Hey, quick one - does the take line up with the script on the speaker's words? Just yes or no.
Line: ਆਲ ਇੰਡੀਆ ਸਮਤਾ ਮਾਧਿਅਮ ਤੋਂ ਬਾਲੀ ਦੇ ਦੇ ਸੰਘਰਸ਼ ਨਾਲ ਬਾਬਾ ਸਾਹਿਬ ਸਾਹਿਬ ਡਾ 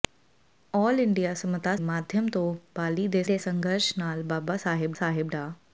yes